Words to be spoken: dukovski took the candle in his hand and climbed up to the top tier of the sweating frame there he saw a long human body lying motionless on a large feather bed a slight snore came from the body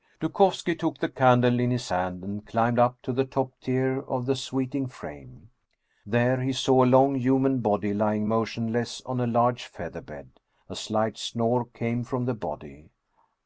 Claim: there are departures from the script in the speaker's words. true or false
false